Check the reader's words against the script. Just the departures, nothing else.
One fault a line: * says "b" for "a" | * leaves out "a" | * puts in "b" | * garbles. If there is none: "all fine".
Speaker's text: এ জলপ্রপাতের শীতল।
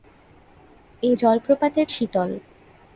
all fine